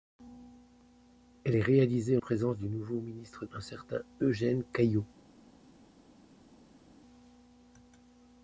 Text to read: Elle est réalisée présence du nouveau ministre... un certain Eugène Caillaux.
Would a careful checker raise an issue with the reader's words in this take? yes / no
no